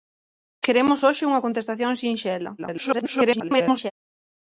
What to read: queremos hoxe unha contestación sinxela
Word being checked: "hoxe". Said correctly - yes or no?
yes